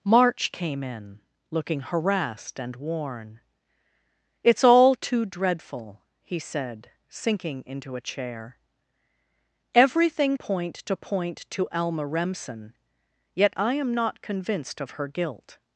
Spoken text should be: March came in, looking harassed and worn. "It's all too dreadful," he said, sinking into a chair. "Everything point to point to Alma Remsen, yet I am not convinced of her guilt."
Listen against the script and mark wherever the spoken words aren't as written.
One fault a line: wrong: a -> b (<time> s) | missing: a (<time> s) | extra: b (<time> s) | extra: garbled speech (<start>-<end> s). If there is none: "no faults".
no faults